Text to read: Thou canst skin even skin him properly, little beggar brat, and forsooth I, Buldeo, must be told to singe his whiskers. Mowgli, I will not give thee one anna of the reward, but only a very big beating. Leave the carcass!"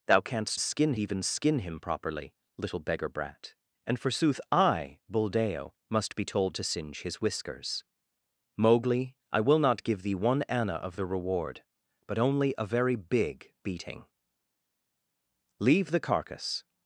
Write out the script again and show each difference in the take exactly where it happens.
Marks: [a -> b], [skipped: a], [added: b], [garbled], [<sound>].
Thou canst skin even skin him properly, little beggar brat, and forsooth I, Buldeo, must be told to singe his whiskers. Mowgli, I will not give thee one anna of the reward, but only a very big beating. Leave the carcass!"